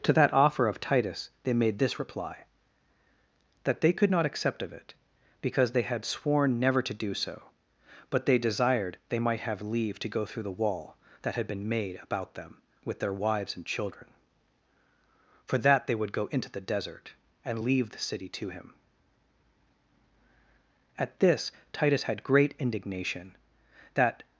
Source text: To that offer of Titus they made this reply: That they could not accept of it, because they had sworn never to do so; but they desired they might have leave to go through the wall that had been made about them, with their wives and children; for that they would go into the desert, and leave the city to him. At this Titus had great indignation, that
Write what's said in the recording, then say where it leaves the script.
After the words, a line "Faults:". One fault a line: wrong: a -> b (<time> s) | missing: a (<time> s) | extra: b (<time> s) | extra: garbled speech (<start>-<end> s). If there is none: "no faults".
To that offer of Titus they made this reply: That they could not accept of it, because they had sworn never to do so; but they desired they might have leave to go through the wall that had been made about them, with their wives and children; for that they would go into the desert, and leave the city to him. At this Titus had great indignation, that
Faults:
no faults